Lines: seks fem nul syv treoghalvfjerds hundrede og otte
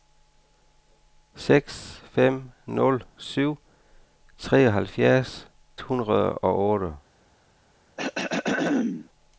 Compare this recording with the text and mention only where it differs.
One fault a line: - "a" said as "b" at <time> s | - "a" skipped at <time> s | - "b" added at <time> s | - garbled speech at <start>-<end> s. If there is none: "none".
none